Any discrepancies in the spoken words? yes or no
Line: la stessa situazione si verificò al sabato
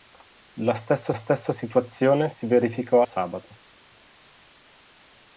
yes